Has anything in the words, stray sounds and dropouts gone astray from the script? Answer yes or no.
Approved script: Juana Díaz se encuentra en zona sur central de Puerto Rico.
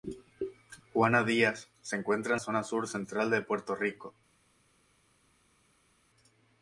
no